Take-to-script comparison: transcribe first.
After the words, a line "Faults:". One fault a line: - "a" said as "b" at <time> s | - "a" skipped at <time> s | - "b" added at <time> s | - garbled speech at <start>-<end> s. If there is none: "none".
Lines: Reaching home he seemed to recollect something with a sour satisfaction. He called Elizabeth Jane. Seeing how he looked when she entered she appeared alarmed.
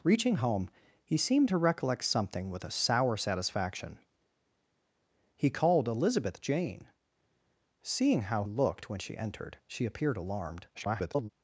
Reaching home he seemed to recollect something with a sour satisfaction. He called Elizabeth Jane. Seeing how looked when she entered she appeared alarmed. [garbled]
Faults:
- "he" skipped at 8.4 s
- garbled speech at 10.7-11.3 s